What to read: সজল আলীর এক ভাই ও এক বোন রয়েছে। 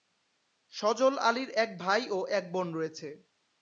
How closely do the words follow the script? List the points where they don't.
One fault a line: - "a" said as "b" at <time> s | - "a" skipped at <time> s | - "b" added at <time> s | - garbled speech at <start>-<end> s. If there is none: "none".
none